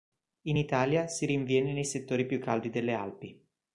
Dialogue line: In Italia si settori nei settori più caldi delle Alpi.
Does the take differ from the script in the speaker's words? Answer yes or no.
yes